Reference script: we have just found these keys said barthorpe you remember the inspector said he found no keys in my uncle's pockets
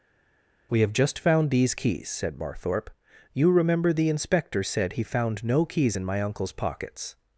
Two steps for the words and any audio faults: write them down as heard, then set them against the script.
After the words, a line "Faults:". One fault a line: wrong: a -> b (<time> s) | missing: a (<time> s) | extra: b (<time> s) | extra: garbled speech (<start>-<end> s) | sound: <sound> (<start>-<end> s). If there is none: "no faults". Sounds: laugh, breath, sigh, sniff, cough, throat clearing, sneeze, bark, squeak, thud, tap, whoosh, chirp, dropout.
we have just found these keys said barthorpe you remember the inspector said he found no keys in my uncle's pockets
Faults:
no faults